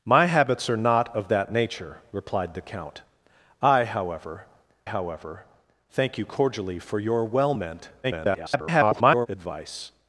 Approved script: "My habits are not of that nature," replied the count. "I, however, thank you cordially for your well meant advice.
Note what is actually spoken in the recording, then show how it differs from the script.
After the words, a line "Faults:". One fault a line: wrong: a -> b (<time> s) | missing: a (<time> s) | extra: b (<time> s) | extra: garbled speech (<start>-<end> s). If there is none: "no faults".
"My habits are not of that nature," replied the count. "I, however however, thank you cordially for your well meant [garbled] advice.
Faults:
extra: however (4.8 s)
extra: garbled speech (8.0-9.3 s)